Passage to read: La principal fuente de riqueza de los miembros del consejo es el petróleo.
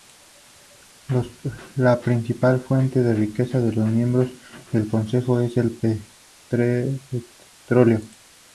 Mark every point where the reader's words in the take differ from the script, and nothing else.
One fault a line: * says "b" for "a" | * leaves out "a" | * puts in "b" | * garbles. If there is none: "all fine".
all fine